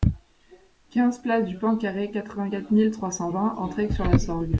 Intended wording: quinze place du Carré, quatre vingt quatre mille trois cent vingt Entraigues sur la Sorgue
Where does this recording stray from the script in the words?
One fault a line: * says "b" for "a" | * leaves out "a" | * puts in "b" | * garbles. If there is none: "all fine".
* puts in "Pan"